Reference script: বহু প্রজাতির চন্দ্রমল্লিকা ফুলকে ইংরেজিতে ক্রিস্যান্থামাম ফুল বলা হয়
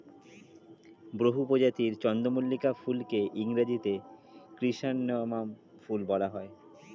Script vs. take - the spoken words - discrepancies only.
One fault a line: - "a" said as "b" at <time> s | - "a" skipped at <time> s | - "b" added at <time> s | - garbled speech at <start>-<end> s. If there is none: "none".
none